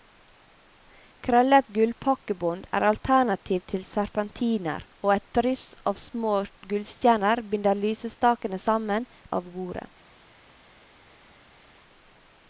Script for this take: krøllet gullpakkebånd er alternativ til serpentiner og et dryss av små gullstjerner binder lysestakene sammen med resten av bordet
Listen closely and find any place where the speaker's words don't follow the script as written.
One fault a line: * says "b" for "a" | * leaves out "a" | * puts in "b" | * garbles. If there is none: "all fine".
* leaves out "med resten"